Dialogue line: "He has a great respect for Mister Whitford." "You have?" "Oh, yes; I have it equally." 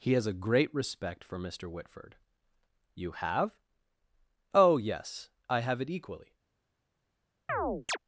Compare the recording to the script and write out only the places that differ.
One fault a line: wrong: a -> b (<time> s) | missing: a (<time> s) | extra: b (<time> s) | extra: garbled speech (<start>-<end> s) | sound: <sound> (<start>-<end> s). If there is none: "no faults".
sound: chirp (7.5-8.0 s)